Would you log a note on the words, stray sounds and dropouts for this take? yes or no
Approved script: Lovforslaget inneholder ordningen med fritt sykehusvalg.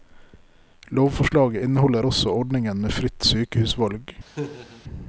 yes